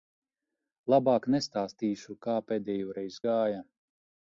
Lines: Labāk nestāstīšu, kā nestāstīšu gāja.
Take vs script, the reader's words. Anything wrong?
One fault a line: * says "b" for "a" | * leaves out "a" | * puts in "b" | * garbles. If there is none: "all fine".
* says "pēdējoreiz" for "nestāstīšu"